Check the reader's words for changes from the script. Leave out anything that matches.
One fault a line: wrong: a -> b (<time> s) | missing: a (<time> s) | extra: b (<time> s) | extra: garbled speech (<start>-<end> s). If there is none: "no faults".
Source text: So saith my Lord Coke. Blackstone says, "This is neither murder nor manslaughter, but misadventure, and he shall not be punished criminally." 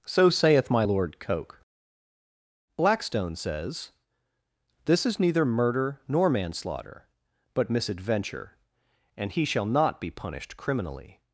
no faults